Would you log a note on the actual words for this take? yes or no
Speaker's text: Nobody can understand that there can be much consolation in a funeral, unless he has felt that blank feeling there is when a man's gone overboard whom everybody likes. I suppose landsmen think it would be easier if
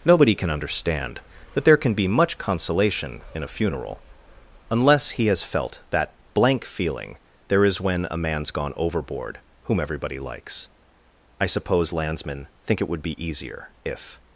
no